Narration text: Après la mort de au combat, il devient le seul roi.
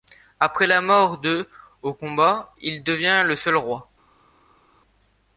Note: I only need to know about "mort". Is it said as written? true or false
true